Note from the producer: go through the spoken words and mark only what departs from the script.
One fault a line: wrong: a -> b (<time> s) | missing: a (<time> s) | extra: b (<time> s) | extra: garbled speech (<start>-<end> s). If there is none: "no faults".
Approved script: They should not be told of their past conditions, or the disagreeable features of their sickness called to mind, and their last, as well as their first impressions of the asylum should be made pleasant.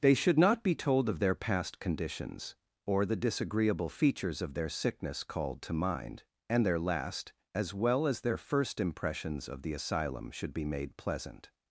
no faults